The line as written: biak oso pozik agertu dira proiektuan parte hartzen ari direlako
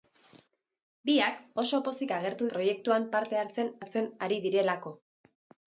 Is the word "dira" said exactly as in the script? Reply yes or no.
no